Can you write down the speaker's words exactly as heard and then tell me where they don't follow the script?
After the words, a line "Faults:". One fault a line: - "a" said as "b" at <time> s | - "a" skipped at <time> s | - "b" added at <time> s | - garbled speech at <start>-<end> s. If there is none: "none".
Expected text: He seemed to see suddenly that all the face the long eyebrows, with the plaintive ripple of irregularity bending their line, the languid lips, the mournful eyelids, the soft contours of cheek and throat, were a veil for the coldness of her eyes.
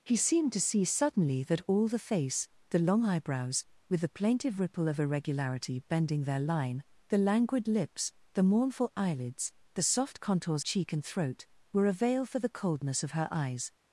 He seemed to see suddenly that all the face the long eyebrows, with the plaintive ripple of irregularity bending their line, the languid lips, the mournful eyelids, the soft contours cheek and throat, were a veil for the coldness of her eyes.
Faults:
- "of" skipped at 10.6 s